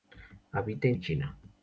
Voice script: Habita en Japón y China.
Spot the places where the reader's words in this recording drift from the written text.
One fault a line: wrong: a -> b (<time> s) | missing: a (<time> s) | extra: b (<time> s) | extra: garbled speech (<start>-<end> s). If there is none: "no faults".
missing: Japón (0.9 s)